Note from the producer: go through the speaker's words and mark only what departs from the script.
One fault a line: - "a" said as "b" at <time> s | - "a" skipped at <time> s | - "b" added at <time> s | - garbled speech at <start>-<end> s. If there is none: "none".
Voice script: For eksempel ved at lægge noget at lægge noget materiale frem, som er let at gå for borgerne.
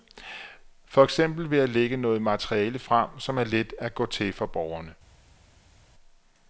- "at lægge noget" skipped at 2.2 s
- "til" added at 4.1 s